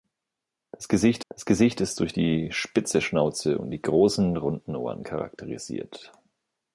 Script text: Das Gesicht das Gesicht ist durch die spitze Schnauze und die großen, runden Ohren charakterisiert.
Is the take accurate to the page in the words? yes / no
yes